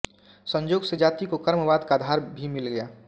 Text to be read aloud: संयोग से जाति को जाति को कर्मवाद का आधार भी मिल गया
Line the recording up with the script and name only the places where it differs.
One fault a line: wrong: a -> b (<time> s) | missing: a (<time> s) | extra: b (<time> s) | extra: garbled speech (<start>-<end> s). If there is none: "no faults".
missing: जाति को (1.4 s)